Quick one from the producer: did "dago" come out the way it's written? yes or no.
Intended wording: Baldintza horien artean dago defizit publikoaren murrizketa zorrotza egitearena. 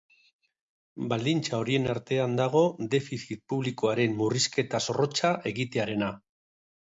yes